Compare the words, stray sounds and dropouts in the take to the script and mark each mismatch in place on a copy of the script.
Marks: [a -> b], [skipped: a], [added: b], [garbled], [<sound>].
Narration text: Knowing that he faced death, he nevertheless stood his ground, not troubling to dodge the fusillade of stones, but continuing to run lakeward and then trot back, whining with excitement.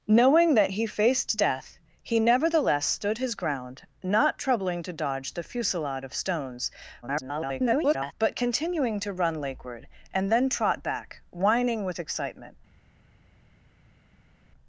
Knowing that he faced death, he nevertheless stood his ground, not troubling to dodge the fusillade of stones, [garbled] but continuing to run lakeward and then trot back, whining with excitement.